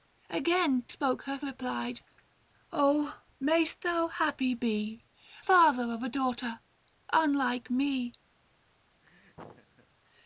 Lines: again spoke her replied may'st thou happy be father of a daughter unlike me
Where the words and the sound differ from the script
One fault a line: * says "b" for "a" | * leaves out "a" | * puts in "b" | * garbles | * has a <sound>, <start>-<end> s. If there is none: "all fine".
* has a laugh, 9.0-9.9 s